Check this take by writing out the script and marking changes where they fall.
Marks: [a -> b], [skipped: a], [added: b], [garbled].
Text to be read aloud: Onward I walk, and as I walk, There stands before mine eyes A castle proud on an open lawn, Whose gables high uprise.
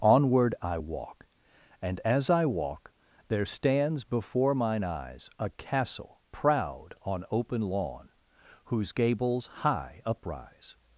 Onward I walk, and as I walk, There stands before mine eyes A castle proud on [skipped: an] open lawn, Whose gables high uprise.